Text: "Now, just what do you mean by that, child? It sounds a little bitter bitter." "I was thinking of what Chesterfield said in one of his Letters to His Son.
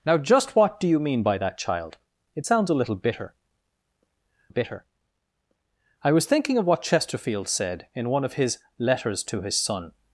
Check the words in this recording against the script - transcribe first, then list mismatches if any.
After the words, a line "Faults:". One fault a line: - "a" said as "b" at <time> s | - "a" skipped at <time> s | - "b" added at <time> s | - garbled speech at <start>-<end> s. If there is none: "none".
"Now, just what do you mean by that, child? It sounds a little bitter bitter." "I was thinking of what Chesterfield said in one of his Letters to His Son.
Faults:
none